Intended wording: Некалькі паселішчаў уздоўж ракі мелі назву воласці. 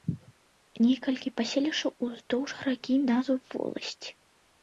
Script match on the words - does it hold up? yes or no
no